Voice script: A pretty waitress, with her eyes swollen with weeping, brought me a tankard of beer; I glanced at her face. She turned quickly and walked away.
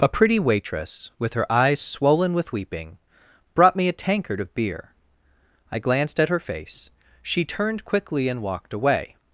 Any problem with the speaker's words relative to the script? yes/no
no